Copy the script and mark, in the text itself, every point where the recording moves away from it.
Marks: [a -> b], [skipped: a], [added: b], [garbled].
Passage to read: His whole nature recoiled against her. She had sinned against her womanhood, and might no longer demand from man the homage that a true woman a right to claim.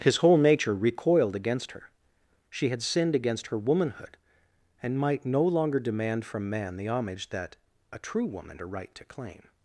His whole nature recoiled against her. She had sinned against her womanhood, and might no longer demand from man the homage that a true woman a right to claim.